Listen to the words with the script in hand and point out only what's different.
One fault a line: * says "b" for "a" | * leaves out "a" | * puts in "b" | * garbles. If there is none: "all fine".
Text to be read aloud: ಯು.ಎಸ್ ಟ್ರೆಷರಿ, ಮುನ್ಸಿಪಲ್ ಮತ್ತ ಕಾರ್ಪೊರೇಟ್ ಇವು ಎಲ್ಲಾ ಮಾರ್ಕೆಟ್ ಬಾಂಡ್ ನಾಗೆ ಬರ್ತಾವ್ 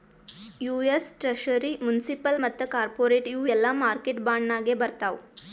all fine